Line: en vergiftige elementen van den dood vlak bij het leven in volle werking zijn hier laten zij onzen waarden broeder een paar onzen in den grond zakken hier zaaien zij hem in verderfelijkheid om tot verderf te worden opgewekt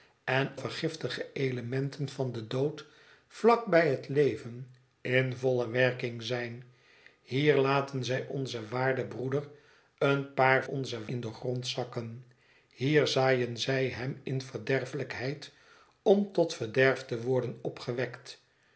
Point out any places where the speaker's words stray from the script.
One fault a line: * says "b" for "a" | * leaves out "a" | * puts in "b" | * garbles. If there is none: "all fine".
all fine